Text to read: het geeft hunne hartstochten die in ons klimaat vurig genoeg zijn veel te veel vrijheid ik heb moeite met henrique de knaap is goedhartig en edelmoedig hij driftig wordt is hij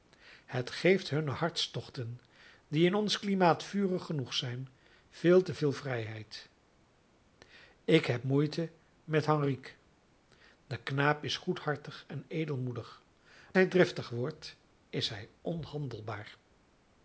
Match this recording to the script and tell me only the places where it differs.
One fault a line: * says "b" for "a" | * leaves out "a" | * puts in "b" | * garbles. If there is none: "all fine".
all fine